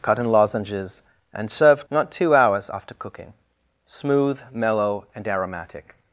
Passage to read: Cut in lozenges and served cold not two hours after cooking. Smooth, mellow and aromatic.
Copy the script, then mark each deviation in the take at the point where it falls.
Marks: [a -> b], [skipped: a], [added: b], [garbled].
Cut in lozenges and served [skipped: cold] not two hours after cooking. Smooth, mellow and aromatic.